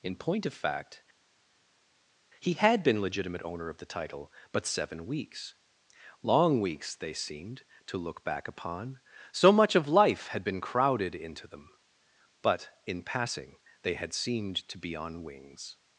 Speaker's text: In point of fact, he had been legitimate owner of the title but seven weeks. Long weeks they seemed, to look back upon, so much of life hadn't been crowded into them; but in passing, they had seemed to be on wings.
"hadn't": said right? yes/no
no